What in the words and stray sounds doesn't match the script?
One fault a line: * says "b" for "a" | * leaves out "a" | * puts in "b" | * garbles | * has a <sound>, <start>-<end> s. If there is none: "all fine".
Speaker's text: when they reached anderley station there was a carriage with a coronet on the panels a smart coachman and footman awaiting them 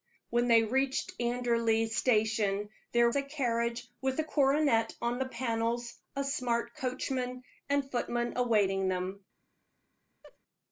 * leaves out "was"
* has a laugh, 10.2-10.4 s